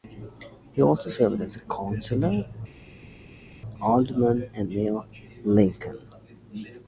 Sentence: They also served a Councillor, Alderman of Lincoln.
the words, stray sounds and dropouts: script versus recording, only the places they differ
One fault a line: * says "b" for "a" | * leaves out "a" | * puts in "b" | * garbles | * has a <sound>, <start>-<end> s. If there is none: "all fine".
* says "He" for "They"
* puts in "as"
* puts in "and Mayor"